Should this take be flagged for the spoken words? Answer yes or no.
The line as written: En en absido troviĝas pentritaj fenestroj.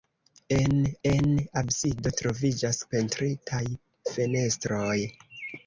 no